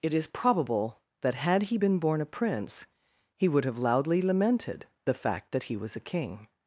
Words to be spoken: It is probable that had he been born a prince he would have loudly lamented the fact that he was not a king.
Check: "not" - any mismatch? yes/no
yes